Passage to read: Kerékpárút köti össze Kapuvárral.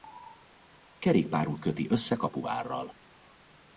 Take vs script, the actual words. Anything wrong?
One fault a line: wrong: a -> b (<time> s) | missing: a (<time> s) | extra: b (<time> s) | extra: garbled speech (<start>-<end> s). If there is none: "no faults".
no faults